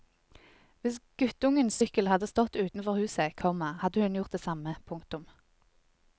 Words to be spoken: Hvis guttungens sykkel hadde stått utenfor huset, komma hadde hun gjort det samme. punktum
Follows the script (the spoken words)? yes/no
yes